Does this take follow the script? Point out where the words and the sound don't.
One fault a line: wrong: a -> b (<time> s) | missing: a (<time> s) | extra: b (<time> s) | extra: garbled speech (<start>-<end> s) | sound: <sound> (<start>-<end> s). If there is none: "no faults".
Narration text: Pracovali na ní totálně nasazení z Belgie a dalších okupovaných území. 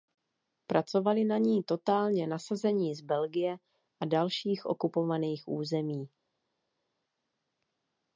no faults